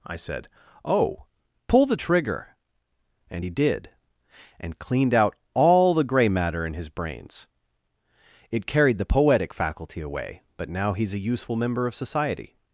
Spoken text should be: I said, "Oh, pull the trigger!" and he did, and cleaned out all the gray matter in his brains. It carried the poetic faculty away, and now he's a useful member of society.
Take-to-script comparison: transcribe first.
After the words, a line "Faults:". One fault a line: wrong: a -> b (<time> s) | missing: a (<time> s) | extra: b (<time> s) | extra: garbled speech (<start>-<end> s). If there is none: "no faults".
I said, "Oh, pull the trigger!" and he did, and cleaned out all the gray matter in his brains. It carried the poetic faculty away, but now he's a useful member of society.
Faults:
wrong: and -> but (10.6 s)